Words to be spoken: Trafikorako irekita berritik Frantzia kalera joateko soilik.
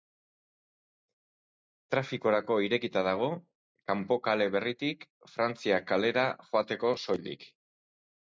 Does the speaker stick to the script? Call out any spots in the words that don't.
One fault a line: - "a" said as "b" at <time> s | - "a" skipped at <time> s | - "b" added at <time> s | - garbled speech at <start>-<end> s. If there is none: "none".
- "dago Kanpo kale" added at 3.1 s